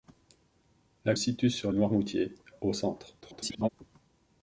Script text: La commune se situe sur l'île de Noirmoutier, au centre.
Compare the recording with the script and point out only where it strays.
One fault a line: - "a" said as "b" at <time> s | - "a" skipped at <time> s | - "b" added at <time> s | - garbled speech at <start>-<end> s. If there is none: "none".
- "commune se" skipped at 1.1 s
- "l'île de" skipped at 1.7 s
- garbled speech at 3.2-3.7 s